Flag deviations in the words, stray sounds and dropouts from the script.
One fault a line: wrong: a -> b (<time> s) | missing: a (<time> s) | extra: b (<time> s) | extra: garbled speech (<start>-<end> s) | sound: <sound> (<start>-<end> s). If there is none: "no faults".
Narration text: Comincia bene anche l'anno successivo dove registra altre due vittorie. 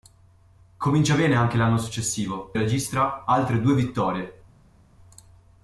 missing: dove (2.5 s)